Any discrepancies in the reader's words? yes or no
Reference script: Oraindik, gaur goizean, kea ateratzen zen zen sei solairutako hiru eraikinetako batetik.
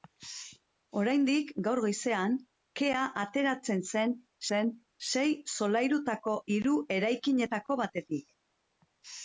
no